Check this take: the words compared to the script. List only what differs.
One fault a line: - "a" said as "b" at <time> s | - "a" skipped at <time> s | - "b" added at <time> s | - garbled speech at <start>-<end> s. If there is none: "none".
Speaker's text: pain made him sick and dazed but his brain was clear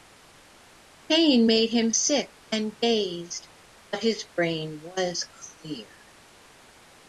none